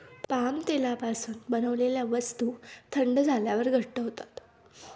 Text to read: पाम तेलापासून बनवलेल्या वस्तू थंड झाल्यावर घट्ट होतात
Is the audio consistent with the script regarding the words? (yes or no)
yes